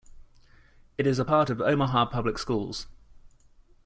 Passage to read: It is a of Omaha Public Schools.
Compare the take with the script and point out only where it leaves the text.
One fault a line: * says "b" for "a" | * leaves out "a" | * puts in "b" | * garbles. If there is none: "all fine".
* puts in "part"